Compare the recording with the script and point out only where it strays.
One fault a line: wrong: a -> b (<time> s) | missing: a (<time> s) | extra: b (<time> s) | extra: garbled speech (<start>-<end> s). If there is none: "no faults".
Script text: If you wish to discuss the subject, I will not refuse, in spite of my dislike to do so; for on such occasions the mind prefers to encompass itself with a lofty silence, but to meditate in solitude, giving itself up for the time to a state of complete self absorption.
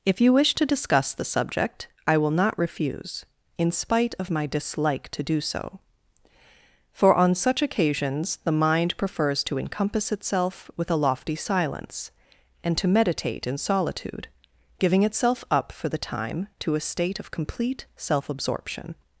wrong: but -> and (12.6 s)